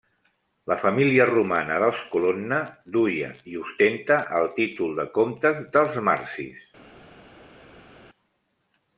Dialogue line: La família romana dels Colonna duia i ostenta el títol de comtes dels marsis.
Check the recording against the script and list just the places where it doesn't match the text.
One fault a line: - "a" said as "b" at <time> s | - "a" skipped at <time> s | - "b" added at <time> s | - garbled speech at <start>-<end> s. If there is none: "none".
none